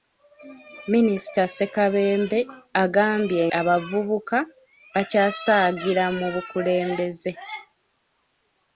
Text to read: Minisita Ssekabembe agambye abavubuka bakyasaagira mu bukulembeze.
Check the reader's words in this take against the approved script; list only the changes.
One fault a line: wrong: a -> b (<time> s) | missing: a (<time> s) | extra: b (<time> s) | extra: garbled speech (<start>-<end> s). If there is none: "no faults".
no faults